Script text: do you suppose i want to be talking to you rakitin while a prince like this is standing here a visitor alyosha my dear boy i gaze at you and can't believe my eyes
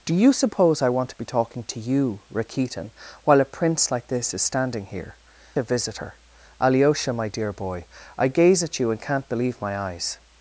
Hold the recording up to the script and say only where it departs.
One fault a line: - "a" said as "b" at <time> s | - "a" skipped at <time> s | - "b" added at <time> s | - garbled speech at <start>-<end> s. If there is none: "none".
none